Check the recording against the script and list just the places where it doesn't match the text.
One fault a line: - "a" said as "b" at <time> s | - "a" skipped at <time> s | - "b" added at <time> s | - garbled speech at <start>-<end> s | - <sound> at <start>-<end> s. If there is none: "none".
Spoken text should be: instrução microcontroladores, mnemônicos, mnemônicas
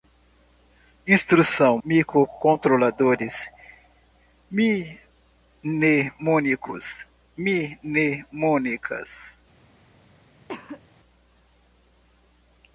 - cough at 10.5-10.8 s